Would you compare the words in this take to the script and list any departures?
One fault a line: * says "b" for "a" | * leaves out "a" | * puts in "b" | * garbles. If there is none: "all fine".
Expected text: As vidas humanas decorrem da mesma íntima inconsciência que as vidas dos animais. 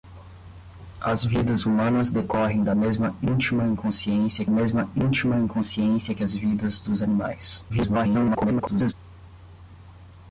* puts in "mesma íntima inconsciência"
* garbles